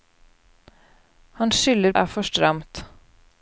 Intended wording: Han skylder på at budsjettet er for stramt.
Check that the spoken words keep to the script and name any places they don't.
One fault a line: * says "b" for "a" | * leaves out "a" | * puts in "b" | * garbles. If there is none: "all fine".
* leaves out "på at budsjettet"